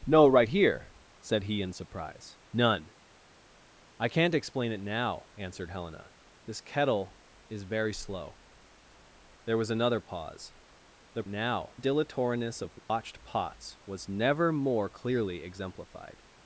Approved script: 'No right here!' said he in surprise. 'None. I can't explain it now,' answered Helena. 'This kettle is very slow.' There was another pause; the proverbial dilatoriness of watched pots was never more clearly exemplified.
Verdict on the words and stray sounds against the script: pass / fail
fail